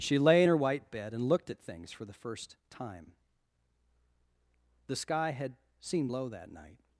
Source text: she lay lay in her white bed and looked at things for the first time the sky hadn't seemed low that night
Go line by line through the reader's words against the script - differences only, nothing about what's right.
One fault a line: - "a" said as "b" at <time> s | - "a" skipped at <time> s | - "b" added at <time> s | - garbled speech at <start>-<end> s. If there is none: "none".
- "lay" skipped at 0.4 s
- "hadn't" said as "had" at 5.3 s